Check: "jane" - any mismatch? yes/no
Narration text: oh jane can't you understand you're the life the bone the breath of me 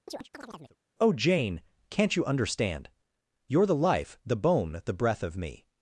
no